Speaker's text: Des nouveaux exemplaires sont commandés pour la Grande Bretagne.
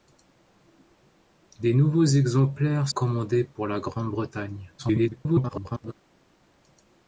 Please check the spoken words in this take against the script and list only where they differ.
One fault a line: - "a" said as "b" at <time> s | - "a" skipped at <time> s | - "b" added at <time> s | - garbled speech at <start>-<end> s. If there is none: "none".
- "sont" skipped at 2.9 s
- garbled speech at 4.8-5.9 s